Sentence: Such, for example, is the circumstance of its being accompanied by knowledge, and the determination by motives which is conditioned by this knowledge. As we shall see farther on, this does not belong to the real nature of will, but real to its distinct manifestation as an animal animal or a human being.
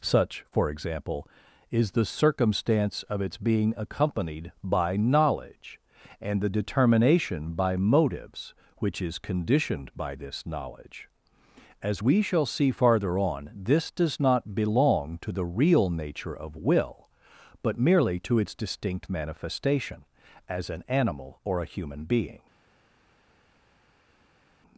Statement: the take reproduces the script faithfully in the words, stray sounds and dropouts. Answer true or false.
false